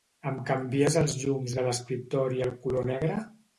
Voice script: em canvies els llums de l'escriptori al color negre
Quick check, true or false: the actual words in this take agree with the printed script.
true